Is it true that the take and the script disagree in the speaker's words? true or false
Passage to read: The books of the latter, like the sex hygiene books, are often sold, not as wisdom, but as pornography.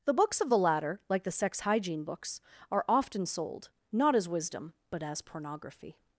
false